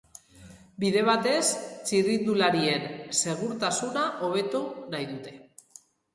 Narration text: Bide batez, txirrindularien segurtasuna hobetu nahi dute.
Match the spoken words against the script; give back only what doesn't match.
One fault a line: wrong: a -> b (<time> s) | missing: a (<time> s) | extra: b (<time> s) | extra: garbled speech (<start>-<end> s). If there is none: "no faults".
no faults